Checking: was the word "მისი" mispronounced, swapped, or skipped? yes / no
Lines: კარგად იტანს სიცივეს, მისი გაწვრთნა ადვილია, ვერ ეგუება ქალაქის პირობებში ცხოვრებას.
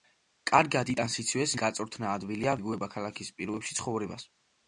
yes